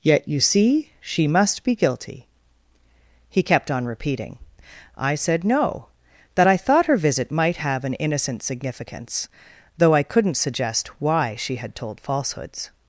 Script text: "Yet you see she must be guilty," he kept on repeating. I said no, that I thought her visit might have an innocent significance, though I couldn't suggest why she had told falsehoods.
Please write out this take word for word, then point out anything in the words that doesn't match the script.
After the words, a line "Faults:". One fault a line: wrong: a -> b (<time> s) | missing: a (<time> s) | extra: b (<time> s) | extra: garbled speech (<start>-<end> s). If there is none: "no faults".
"Yet you see she must be guilty," he kept on repeating. I said no, that I thought her visit might have an innocent significance, though I couldn't suggest why she had told falsehoods.
Faults:
no faults